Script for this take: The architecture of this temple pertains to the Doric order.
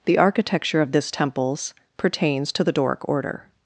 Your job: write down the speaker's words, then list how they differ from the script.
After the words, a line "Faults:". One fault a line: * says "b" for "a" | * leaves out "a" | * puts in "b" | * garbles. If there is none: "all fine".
The architecture of this temples pertains to the Doric order.
Faults:
* says "temples" for "temple"